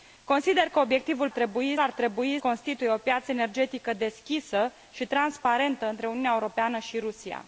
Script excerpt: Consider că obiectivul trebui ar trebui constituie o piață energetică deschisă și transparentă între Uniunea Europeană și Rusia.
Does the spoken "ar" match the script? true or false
true